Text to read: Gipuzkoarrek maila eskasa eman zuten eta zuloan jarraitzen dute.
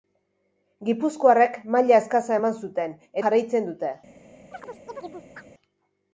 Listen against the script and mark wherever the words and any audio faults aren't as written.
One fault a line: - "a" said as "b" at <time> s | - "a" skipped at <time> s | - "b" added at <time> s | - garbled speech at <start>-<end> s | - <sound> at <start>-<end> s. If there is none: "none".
- "eta zuloan" skipped at 3.0 s
- chirp at 4.5-5.5 s